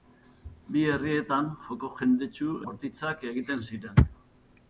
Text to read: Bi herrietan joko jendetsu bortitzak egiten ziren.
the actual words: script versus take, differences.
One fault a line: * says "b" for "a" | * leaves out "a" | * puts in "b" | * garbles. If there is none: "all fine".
all fine